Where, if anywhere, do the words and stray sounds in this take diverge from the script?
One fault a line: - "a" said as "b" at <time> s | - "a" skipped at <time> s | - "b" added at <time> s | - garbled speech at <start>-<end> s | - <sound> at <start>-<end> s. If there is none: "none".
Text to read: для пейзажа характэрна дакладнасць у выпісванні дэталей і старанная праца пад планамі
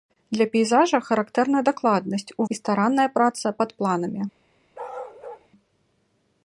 - "выпісванні дэталей" skipped at 2.5 s
- bark at 4.7-5.5 s